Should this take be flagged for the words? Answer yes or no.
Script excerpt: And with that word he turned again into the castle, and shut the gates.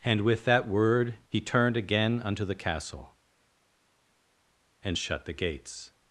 yes